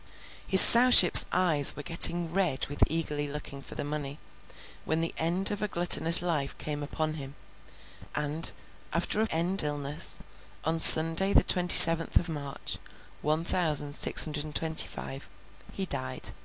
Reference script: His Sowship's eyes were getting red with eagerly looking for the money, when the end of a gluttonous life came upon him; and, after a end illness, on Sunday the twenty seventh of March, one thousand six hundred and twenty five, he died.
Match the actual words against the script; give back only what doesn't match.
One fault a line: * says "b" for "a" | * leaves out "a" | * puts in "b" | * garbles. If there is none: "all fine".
all fine